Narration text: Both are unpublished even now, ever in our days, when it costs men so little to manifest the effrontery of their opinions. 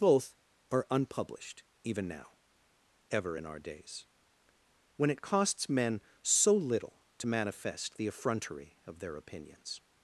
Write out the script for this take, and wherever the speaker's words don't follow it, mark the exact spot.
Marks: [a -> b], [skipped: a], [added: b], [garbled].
Both are unpublished even now, ever in our days, when it costs men so little to manifest the effrontery of their opinions.